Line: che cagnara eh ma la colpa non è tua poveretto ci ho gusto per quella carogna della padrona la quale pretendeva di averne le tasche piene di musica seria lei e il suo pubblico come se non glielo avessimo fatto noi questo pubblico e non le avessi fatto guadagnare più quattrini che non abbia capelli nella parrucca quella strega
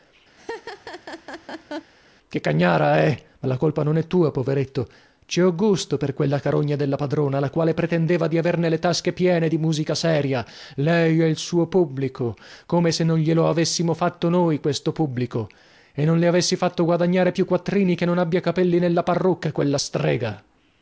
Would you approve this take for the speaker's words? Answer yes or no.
yes